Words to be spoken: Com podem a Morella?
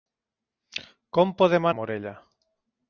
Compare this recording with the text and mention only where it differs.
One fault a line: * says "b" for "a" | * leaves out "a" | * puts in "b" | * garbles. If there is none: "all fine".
all fine